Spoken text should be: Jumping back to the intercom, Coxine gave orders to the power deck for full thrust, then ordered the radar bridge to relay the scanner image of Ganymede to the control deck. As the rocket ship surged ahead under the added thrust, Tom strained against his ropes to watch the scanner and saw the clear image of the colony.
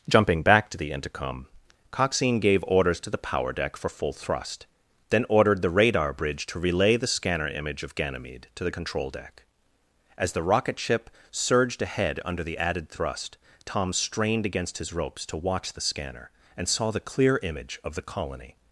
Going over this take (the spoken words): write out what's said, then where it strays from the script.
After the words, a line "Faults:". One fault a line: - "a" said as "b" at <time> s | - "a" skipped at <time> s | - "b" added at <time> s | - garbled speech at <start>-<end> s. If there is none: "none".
Jumping back to the intercom, Coxine gave orders to the power deck for full thrust, then ordered the radar bridge to relay the scanner image of Ganymede to the control deck. As the rocket ship surged ahead under the added thrust, Tom strained against his ropes to watch the scanner and saw the clear image of the colony.
Faults:
none